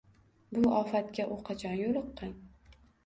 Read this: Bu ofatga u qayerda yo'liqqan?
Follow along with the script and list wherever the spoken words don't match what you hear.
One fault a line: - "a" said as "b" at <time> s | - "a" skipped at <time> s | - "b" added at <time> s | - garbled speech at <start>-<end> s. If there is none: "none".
- "qayerda" said as "qachon" at 1.5 s